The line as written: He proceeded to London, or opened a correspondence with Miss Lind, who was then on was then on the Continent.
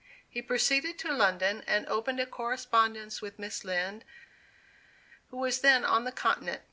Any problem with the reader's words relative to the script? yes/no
yes